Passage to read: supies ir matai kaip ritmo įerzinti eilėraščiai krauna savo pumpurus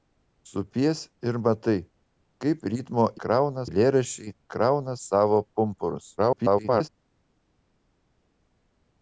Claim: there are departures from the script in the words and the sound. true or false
true